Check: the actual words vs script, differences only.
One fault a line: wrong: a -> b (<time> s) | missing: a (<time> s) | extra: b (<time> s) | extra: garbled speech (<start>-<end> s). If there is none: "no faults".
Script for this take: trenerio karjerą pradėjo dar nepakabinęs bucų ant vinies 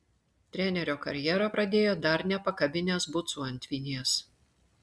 no faults